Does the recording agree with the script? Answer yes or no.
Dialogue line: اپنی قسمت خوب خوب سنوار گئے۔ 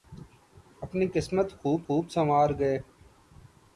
yes